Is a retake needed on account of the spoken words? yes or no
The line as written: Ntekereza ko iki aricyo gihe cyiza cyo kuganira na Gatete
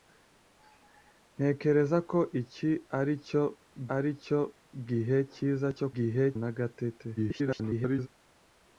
yes